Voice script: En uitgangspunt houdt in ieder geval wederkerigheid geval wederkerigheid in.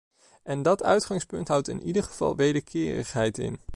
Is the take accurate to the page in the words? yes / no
no